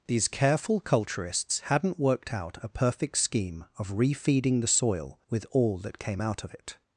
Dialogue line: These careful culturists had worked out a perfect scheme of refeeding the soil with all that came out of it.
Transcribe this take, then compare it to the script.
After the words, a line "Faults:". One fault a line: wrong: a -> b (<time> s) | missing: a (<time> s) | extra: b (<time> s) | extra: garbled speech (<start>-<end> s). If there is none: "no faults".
These careful culturists hadn't worked out a perfect scheme of refeeding the soil with all that came out of it.
Faults:
wrong: had -> hadn't (1.6 s)